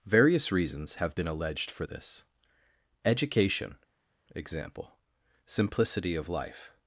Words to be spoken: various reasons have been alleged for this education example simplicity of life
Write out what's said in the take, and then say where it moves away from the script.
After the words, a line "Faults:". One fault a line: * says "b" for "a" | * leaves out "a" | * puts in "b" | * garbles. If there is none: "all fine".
various reasons have been alleged for this education example simplicity of life
Faults:
all fine